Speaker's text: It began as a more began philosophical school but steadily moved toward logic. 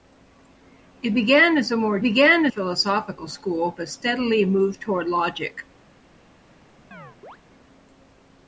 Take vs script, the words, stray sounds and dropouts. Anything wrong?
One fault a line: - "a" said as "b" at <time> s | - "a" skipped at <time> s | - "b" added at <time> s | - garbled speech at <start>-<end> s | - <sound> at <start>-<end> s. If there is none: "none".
- chirp at 6.9-7.4 s